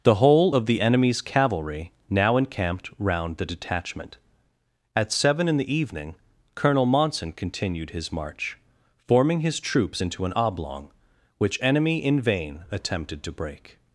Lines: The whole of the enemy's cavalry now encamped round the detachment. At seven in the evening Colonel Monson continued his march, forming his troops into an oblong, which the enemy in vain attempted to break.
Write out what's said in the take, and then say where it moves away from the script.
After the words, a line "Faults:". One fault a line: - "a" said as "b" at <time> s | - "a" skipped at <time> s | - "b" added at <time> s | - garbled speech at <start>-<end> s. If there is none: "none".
The whole of the enemy's cavalry now encamped round the detachment. At seven in the evening Colonel Monson continued his march, forming his troops into an oblong, which enemy in vain attempted to break.
Faults:
- "the" skipped at 11.6 s